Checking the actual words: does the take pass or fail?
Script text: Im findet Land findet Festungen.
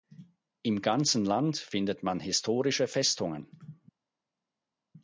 fail